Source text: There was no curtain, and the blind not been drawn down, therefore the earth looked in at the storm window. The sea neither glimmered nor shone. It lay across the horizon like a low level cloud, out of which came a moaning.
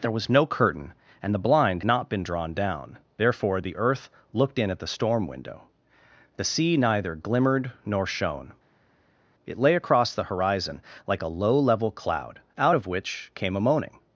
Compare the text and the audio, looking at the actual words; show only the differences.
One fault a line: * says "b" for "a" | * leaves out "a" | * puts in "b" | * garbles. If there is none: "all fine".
all fine